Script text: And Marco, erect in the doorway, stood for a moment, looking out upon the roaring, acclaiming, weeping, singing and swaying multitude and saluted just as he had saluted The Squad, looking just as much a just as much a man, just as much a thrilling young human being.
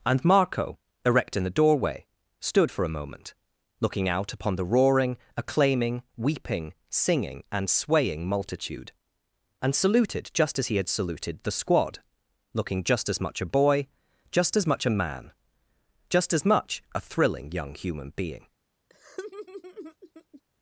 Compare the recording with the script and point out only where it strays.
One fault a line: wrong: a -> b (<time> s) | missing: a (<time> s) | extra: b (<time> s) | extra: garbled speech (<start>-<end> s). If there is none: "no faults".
extra: boy (13.5 s)